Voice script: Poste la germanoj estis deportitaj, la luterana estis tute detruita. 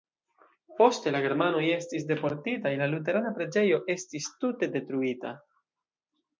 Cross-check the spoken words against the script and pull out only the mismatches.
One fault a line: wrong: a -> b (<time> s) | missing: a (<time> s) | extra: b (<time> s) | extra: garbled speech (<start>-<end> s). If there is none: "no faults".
extra: preĝejo (3.4 s)